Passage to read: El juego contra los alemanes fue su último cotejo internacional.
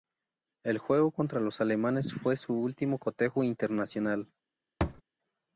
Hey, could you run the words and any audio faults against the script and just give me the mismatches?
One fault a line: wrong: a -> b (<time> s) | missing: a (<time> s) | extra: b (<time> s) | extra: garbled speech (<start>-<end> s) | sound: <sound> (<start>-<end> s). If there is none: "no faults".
sound: thud (4.8-5.0 s)